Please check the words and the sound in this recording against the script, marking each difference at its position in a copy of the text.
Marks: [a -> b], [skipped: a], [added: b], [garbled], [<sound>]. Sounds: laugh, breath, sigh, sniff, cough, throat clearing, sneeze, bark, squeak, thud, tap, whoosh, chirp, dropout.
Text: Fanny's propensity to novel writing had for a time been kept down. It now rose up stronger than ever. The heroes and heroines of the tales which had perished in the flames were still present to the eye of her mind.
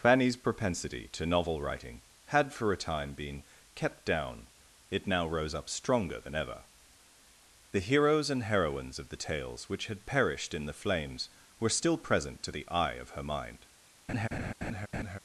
Fanny's propensity to novel writing had for a time been kept down. It now rose up stronger than ever. The heroes and heroines of the tales which had perished in the flames were still present to the eye of her mind. [laugh]